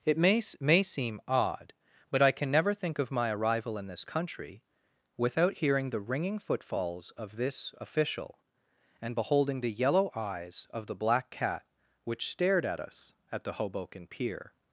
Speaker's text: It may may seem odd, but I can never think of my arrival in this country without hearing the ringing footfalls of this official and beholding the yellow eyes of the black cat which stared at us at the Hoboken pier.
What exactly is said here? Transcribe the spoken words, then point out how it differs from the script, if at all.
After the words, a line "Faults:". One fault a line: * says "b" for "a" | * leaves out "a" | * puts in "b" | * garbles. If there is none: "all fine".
It may may seem odd, but I can never think of my arrival in this country without hearing the ringing footfalls of this official and beholding the yellow eyes of the black cat which stared at us at the Hoboken pier.
Faults:
all fine